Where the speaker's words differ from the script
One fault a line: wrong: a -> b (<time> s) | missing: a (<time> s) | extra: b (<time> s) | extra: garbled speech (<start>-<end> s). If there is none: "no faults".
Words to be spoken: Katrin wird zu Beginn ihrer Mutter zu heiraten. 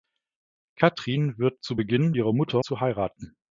no faults